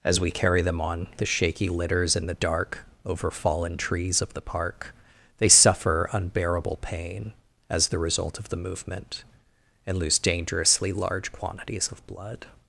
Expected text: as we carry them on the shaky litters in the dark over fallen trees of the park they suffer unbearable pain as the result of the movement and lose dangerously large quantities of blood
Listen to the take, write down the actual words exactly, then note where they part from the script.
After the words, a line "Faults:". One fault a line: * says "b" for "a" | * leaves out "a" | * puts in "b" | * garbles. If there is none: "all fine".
as we carry them on the shaky litters in the dark over fallen trees of the park they suffer unbearable pain as the result of the movement and lose dangerously large quantities of blood
Faults:
all fine